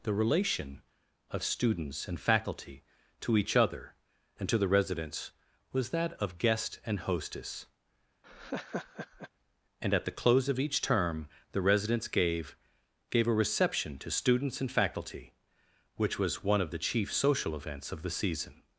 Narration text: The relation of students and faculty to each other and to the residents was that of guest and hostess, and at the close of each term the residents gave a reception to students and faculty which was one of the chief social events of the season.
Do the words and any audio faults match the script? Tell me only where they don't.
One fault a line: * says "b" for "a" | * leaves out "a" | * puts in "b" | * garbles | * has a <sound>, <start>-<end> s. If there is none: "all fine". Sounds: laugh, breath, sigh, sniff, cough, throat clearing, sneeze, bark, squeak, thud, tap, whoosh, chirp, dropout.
* has a laugh, 8.2-9.3 s
* puts in "gave"